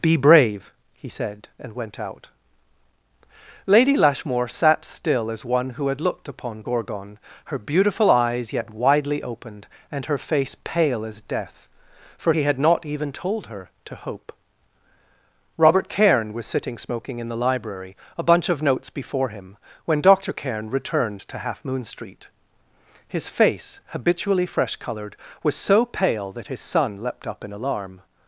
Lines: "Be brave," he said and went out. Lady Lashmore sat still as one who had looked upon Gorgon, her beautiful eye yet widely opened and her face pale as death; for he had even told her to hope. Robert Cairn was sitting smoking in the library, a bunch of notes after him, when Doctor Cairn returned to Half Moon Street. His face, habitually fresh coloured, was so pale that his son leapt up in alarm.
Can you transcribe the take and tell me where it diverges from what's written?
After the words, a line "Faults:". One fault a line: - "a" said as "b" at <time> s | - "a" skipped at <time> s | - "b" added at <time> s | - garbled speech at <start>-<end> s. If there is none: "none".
"Be brave," he said and went out. Lady Lashmore sat still as one who had looked upon Gorgon, her beautiful eyes yet widely opened and her face pale as death; for he had not even told her to hope. Robert Cairn was sitting smoking in the library, a bunch of notes before him, when Doctor Cairn returned to Half Moon Street. His face, habitually fresh coloured, was so pale that his son leapt up in alarm.
Faults:
- "eye" said as "eyes" at 8.1 s
- "not" added at 12.6 s
- "after" said as "before" at 18.9 s